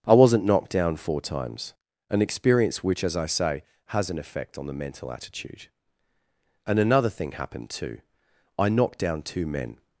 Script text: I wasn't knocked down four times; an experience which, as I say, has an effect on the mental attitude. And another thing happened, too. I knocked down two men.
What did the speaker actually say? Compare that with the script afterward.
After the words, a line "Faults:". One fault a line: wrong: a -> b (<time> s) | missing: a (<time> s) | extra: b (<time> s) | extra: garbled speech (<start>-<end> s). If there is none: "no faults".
I wasn't knocked down four times; an experience which, as I say, has an effect on the mental attitude. And another thing happened, too. I knocked down two men.
Faults:
no faults